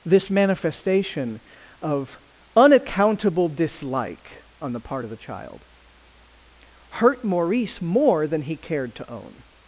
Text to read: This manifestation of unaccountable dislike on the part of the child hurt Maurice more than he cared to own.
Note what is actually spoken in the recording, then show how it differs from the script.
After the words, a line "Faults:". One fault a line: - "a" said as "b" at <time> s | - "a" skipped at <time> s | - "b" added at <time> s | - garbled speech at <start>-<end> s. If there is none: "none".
This manifestation of unaccountable dislike on the part of the child hurt Maurice more than he cared to own.
Faults:
none